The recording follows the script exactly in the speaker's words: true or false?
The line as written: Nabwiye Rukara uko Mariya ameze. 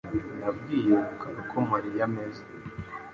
true